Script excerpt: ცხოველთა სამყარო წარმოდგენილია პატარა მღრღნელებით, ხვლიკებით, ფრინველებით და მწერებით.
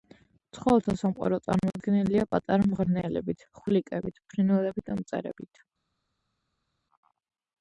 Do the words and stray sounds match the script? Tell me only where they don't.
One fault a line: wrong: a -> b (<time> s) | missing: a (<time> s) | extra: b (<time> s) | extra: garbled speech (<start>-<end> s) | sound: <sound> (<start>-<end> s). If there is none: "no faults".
no faults